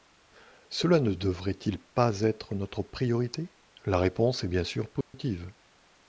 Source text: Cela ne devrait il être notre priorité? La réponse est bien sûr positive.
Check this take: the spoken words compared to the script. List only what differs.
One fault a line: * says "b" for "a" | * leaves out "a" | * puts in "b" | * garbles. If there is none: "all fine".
* puts in "pas"